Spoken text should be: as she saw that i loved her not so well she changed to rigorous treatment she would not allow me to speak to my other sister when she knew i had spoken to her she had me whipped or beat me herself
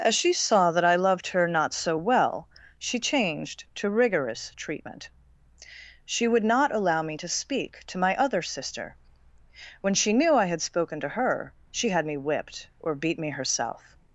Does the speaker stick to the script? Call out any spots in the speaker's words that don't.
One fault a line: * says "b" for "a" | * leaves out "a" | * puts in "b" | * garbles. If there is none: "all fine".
all fine